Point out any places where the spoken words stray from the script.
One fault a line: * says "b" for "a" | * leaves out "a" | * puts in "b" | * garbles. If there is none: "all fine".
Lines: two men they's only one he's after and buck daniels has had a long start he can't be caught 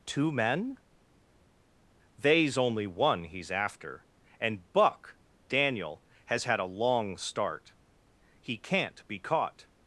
* says "daniel" for "daniels"